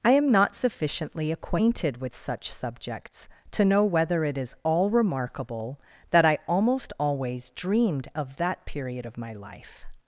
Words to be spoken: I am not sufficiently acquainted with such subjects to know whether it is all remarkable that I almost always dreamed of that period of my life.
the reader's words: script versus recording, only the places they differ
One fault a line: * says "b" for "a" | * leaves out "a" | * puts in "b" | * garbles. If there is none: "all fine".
all fine